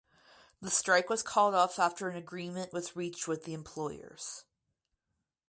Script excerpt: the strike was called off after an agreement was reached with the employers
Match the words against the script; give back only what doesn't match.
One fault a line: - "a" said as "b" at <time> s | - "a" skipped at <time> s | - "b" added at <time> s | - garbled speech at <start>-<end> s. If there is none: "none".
none